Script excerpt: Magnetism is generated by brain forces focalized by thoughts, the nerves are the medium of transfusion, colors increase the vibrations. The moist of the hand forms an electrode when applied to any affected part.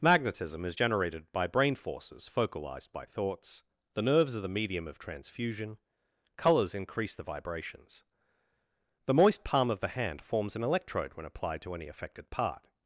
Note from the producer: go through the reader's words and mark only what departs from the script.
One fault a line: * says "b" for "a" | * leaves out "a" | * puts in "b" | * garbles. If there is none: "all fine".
* puts in "palm"